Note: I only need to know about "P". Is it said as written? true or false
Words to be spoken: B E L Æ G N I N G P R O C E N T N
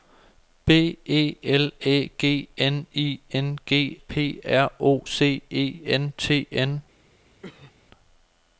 true